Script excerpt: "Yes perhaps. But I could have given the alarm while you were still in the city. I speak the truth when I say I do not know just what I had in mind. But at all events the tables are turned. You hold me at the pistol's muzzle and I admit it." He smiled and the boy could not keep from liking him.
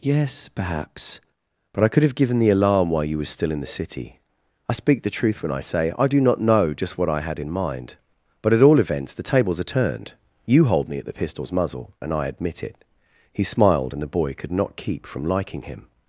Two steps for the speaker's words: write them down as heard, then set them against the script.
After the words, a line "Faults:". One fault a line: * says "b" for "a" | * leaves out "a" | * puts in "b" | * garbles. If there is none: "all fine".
"Yes perhaps. But I could have given the alarm while you were still in the city. I speak the truth when I say I do not know just what I had in mind. But at all events the tables are turned. You hold me at the pistol's muzzle and I admit it." He smiled and the boy could not keep from liking him.
Faults:
all fine